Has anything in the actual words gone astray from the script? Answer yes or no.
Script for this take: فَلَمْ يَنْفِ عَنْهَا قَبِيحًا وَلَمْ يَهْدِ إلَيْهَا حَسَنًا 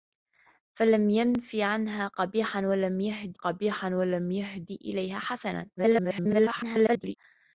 yes